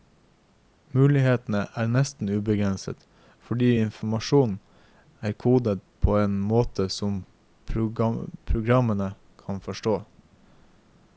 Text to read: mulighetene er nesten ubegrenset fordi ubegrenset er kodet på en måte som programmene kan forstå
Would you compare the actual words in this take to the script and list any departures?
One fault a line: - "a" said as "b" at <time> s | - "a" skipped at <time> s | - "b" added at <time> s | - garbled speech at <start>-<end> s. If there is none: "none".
- "ubegrenset" said as "informasjonen" at 3.8 s